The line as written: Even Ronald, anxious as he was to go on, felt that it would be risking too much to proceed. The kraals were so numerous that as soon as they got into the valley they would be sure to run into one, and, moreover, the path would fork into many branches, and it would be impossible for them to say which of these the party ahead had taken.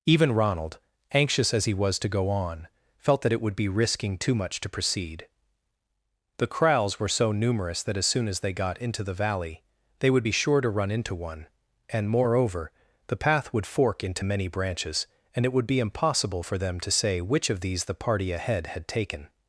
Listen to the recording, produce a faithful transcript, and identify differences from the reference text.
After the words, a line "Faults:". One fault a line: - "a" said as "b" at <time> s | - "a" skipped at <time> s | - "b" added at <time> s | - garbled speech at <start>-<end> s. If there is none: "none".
Even Ronald, anxious as he was to go on, felt that it would be risking too much to proceed. The kraals were so numerous that as soon as they got into the valley they would be sure to run into one, and, moreover, the path would fork into many branches, and it would be impossible for them to say which of these the party ahead had taken.
Faults:
none